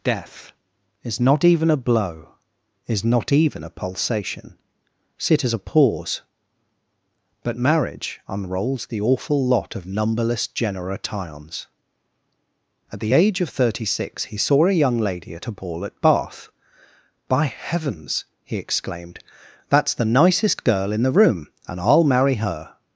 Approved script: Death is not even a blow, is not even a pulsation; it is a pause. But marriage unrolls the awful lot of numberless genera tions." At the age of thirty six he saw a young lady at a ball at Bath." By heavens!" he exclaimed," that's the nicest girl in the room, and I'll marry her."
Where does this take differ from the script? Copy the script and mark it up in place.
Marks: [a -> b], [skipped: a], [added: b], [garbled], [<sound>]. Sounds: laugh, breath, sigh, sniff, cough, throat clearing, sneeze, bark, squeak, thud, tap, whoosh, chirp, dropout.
Death is not even a blow, is not even a pulsation; [it is -> sit as] a pause. But marriage unrolls the awful lot of numberless genera tions." At the age of thirty six he saw a young lady at a ball at Bath." By heavens!" he exclaimed," that's the nicest girl in the room, and I'll marry her."